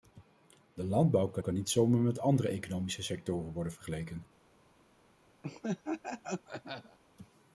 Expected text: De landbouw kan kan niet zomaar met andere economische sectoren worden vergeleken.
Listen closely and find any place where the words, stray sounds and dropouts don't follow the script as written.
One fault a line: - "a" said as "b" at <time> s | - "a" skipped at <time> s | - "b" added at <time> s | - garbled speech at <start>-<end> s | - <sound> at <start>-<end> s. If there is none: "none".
- laugh at 5.4-7.0 s